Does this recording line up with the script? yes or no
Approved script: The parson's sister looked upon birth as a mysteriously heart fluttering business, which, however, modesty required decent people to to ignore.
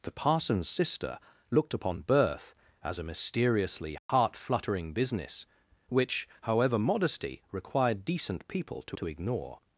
yes